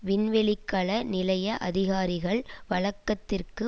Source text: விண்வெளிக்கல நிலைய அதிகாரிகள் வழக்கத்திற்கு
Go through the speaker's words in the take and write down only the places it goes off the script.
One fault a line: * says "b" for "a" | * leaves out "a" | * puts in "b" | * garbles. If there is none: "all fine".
all fine